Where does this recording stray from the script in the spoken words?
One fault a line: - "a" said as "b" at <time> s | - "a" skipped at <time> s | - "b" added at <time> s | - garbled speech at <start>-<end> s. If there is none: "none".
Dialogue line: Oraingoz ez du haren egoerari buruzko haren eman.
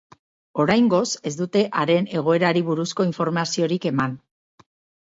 - "du" said as "dute" at 1.4 s
- "haren" said as "informaziorik" at 3.1 s